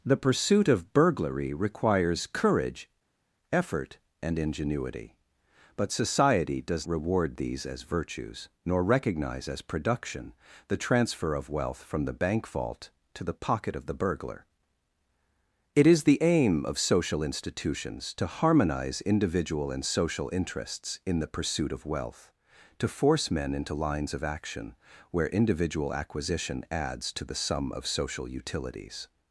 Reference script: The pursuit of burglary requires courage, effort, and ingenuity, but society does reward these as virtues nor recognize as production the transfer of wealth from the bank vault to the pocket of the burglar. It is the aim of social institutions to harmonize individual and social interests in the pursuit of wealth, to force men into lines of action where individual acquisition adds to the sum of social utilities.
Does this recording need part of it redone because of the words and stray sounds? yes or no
no